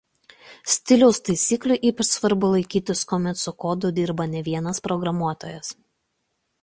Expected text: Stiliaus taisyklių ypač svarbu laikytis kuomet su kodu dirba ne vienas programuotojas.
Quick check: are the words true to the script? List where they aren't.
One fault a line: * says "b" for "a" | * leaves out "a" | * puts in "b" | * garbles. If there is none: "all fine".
all fine